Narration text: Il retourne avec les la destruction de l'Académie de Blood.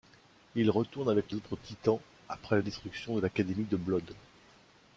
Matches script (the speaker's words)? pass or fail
fail